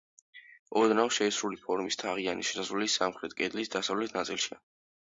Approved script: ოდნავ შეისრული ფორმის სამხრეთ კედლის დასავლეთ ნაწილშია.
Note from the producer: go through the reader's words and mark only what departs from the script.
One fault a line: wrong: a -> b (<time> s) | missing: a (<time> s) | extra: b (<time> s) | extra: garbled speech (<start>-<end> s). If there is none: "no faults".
extra: თაღიანი შესასვლელი (2.0 s)